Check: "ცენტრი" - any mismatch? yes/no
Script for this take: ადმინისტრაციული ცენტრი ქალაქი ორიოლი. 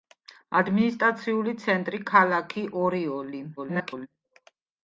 no